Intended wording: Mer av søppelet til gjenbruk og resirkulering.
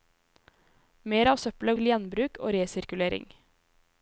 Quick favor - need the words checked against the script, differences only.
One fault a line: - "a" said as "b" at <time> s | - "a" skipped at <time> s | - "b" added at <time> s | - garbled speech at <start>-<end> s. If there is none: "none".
none